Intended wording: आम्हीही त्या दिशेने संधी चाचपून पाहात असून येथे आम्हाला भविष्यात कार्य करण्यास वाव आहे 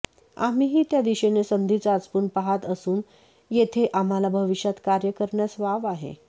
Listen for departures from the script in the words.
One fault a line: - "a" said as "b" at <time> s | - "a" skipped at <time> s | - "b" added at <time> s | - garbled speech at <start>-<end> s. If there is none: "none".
none